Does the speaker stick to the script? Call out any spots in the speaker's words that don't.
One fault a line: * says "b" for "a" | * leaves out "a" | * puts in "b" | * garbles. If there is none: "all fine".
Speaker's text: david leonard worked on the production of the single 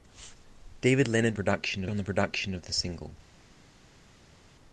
* says "production" for "worked"